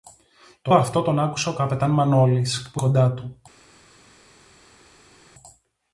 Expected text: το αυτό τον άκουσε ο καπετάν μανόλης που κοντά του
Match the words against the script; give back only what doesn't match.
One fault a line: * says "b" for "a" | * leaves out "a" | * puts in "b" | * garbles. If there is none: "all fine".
all fine